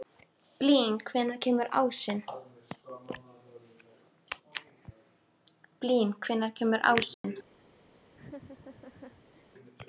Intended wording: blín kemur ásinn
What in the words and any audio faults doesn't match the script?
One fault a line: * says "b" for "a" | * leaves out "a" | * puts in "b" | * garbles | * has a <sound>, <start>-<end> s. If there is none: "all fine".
* puts in "hvenær"
* has a dropout, 7.1-7.2 s
* has a laugh, 8.1-9.4 s